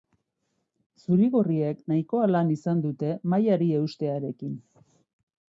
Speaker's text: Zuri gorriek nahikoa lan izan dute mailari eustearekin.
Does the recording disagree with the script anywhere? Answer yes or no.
no